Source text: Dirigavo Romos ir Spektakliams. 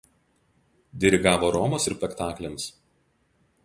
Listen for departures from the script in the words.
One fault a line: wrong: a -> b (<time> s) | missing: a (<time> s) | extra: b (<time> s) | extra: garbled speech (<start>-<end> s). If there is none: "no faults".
no faults